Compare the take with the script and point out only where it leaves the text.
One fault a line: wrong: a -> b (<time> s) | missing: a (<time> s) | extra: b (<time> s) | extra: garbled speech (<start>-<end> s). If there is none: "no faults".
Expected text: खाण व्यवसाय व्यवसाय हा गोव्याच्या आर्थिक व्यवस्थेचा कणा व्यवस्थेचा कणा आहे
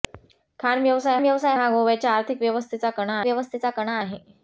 no faults